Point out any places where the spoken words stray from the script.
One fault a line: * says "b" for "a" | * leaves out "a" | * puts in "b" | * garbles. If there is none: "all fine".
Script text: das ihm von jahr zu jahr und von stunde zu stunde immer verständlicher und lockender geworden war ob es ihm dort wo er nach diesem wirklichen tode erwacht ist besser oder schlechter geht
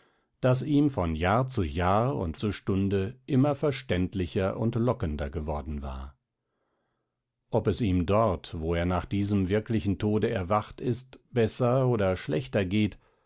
* leaves out "von stunde"